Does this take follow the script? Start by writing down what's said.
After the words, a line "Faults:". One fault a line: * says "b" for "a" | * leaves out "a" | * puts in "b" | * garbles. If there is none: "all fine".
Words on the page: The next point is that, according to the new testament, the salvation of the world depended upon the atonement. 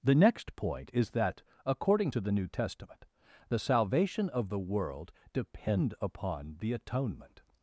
The next point is that, according to the new testament, the salvation of the world depend upon the atonement.
Faults:
* says "depend" for "depended"